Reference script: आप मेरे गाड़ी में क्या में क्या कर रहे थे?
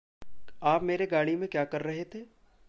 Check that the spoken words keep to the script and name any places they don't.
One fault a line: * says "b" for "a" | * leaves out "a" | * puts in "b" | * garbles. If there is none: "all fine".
* leaves out "में क्या"